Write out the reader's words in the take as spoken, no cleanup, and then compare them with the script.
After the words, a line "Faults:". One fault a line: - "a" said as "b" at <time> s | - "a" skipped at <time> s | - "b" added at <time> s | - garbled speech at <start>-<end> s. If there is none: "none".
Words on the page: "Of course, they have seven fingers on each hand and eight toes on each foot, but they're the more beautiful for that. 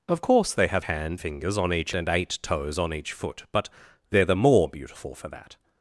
"Of course, they have hand fingers on each and eight toes on each foot, but they're the more beautiful for that.
Faults:
- "seven" said as "hand" at 0.8 s
- "hand" skipped at 1.9 s